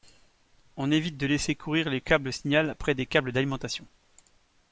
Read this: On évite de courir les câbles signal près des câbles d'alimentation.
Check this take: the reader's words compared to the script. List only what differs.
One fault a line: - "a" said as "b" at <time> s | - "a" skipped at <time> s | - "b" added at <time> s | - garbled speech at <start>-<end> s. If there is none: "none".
- "laisser" added at 1.3 s